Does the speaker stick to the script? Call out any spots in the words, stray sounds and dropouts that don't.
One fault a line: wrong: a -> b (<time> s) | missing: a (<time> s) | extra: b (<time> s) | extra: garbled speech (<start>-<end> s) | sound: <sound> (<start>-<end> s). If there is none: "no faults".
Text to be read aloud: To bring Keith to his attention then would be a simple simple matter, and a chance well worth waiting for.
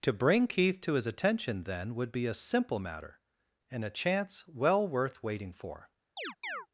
missing: simple (2.8 s)
sound: chirp (6.2-6.7 s)